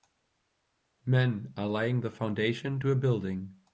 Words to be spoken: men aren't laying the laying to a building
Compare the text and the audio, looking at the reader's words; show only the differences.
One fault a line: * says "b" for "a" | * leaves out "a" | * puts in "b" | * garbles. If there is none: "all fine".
* says "are" for "aren't"
* says "foundation" for "laying"